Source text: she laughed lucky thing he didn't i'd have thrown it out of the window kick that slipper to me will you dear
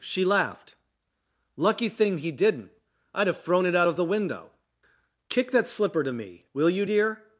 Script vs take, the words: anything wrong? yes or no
no